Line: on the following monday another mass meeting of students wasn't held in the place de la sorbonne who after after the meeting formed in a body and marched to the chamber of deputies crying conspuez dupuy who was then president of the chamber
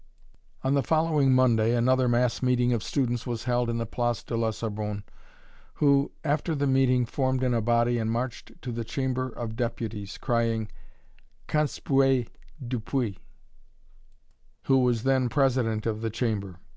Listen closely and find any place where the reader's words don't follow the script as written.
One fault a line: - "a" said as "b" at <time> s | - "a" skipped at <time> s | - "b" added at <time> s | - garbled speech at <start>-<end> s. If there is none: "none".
- "wasn't" said as "was" at 3.3 s
- "after" skipped at 6.5 s